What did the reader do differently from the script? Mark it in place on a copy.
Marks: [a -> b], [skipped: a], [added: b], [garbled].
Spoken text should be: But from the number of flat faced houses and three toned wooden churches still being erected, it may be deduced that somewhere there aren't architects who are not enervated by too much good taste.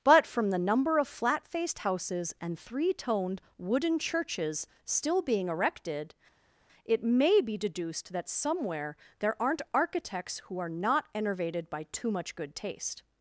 But from the number of flat faced houses and three toned wooden churches still being erected, it may be deduced that somewhere there aren't architects who are not enervated by too much good taste.